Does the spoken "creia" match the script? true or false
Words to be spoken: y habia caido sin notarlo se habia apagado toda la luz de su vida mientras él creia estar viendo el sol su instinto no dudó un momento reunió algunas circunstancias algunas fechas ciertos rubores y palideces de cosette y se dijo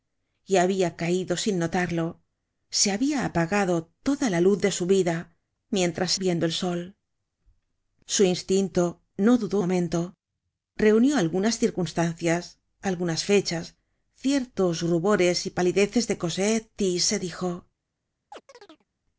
false